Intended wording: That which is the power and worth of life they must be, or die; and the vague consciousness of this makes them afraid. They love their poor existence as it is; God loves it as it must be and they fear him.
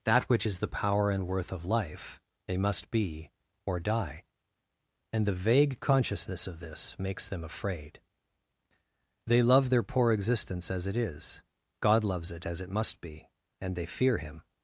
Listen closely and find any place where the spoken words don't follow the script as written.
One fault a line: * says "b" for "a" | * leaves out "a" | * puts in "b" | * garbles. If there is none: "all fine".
all fine